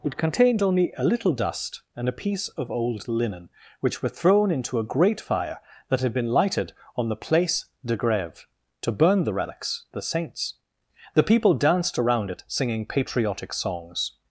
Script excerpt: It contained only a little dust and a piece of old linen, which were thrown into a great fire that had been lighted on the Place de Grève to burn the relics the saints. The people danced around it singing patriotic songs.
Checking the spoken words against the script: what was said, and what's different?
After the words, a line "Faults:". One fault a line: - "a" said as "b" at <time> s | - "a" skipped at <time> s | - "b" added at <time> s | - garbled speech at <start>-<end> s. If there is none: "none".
It contained only a little dust and a piece of old linen, which were thrown into a great fire that had been lighted on the Place de Grève to burn the relics the saints. The people danced around it singing patriotic songs.
Faults:
none